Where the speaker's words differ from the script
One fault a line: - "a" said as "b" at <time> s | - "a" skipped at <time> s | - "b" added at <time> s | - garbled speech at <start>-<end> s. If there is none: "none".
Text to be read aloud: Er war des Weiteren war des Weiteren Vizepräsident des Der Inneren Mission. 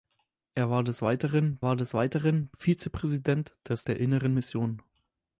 none